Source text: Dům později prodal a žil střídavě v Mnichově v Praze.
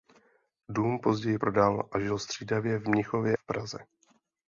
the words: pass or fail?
pass